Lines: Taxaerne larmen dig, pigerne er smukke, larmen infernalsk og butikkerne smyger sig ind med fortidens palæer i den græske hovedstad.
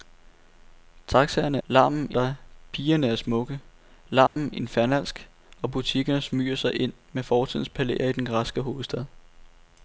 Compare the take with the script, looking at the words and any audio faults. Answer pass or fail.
fail